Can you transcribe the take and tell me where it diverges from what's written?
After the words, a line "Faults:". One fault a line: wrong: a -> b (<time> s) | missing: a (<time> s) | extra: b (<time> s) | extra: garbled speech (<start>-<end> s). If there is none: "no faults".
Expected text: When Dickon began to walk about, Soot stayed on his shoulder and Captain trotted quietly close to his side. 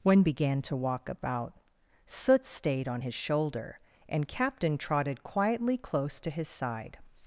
When Began to walk about, Soot stayed on his shoulder and Captain trotted quietly close to his side.
Faults:
missing: Dickon (0.2 s)